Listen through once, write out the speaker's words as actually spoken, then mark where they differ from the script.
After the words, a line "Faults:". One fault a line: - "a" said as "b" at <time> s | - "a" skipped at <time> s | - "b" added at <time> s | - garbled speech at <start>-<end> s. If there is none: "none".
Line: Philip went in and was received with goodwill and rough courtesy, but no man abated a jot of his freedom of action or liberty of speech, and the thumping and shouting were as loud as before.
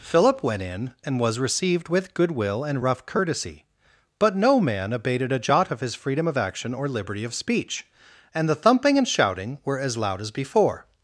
Philip went in and was received with goodwill and rough courtesy, but no man abated a jot of his freedom of action or liberty of speech, and the thumping and shouting were as loud as before.
Faults:
none